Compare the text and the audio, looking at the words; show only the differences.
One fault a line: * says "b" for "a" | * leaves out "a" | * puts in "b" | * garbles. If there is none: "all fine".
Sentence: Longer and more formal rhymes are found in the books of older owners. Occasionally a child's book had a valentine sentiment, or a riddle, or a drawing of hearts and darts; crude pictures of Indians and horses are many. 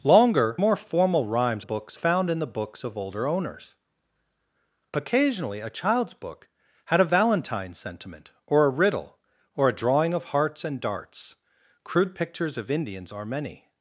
* leaves out "and"
* says "books" for "are"
* leaves out "and horses"